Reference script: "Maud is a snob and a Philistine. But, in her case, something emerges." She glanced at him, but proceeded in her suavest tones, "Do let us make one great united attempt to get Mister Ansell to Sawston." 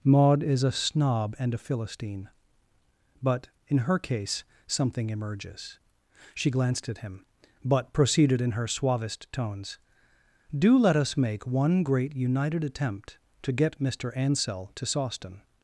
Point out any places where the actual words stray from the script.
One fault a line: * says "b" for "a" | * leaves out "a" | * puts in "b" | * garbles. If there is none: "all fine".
all fine